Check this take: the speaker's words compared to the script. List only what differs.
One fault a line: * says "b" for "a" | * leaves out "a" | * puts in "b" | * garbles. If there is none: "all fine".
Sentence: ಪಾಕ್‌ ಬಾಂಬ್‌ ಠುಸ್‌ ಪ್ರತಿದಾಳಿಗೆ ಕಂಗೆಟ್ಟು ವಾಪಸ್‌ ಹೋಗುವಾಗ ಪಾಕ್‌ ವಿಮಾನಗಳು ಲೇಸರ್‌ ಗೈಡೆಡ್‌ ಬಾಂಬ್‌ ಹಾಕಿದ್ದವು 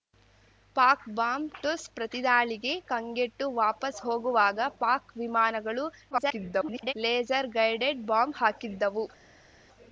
* garbles